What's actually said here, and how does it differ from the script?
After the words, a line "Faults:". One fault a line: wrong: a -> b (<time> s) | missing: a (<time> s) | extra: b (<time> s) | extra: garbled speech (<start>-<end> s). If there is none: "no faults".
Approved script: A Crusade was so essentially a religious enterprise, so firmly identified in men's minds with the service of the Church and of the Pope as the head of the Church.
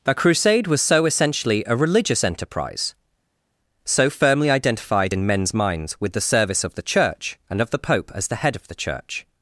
The Crusade was so essentially a religious enterprise, so firmly identified in men's minds with the service of the Church and of the Pope as the head of the Church.
Faults:
wrong: A -> The (0.0 s)